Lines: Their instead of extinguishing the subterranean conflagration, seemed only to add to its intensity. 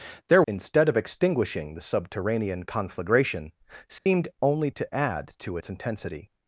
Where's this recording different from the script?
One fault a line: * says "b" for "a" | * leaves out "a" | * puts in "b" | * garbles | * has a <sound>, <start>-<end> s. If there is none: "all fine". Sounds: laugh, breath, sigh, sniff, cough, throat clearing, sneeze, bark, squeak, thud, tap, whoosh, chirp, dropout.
* has a dropout, 4.0-4.1 s